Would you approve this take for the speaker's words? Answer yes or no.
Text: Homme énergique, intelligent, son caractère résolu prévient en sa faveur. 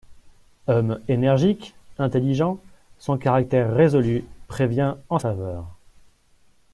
no